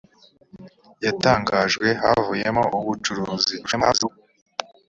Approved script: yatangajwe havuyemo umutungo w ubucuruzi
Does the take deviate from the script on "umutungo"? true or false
true